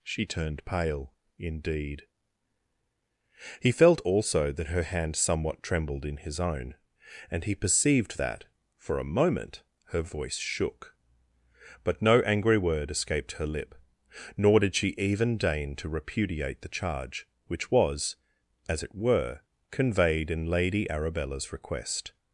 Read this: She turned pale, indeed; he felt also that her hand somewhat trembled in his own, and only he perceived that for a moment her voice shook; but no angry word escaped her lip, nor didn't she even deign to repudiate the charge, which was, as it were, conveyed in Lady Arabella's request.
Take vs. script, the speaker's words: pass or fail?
fail